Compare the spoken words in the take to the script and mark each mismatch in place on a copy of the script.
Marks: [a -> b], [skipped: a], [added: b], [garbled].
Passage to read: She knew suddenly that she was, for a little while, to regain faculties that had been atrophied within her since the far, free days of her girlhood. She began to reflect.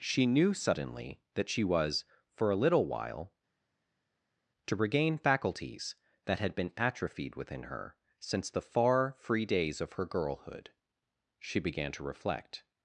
She knew suddenly that she was, for a little while, to regain faculties that had been atrophied within her since the far, free days of her girlhood. She began to reflect.